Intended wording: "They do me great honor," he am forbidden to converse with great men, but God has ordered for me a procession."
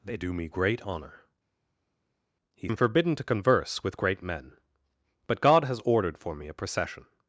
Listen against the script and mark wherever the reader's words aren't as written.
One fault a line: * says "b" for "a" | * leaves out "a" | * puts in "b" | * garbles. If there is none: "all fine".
all fine